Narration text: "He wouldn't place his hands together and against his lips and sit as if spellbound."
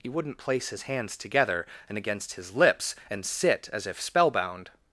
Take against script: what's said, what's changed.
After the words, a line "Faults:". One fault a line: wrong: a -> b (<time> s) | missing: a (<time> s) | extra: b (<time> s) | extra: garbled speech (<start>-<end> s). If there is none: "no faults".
"He wouldn't place his hands together and against his lips and sit as if spellbound."
Faults:
no faults